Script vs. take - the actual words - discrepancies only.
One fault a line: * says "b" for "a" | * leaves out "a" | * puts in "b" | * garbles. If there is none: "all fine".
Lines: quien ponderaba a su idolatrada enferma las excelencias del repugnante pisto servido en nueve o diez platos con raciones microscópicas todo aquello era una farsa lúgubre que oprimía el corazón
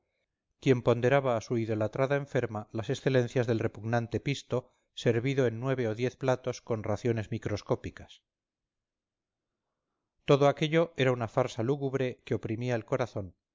all fine